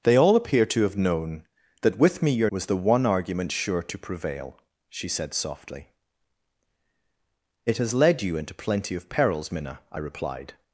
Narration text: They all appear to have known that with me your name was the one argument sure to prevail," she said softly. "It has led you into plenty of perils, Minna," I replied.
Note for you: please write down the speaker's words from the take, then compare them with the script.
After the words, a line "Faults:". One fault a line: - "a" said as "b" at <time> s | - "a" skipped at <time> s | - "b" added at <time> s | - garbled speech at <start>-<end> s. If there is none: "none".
They all appear to have known that with me your was the one argument sure to prevail," she said softly. "It has led you into plenty of perils, Minna," I replied.
Faults:
- "name" skipped at 2.5 s